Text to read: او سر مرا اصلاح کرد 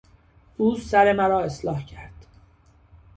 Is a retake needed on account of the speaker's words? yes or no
no